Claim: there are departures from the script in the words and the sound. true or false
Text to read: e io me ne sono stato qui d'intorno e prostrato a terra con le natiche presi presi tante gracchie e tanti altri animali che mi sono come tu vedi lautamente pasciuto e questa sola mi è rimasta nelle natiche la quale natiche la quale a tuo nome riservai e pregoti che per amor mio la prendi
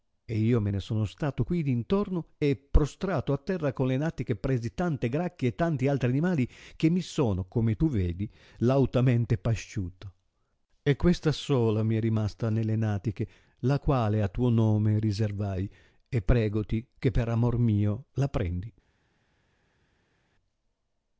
true